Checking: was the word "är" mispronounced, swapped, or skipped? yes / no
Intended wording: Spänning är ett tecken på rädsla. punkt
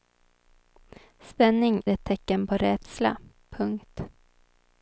yes